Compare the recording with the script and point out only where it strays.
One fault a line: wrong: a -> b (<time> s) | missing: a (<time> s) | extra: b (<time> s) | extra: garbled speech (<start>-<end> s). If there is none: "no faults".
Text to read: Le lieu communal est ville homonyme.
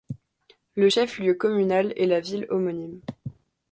extra: chef (0.9 s)
extra: la (2.1 s)